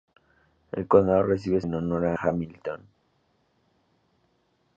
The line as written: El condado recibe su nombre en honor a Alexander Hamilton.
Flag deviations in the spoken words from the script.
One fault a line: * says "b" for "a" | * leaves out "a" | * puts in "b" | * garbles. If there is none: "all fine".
* leaves out "su nombre"
* leaves out "Alexander"